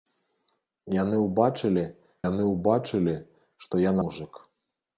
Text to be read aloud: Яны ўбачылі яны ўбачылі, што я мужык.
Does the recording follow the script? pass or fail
pass